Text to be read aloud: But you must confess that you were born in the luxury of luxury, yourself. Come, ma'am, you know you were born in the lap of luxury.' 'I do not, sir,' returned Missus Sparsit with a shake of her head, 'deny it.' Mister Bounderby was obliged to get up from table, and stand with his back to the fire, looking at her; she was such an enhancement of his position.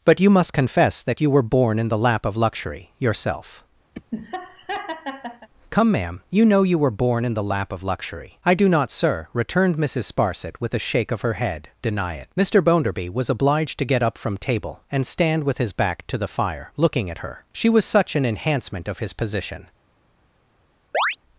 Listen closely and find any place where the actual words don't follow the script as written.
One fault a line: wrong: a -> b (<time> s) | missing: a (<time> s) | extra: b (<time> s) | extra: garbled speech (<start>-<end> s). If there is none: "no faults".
wrong: luxury -> lap (2.0 s)